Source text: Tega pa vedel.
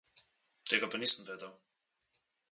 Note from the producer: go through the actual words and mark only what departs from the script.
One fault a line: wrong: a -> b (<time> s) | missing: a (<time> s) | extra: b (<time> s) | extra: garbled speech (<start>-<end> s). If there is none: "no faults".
extra: nisem (1.0 s)